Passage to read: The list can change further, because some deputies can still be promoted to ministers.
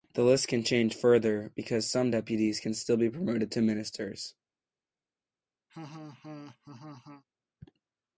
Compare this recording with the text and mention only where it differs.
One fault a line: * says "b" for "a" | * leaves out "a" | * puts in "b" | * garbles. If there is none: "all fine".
all fine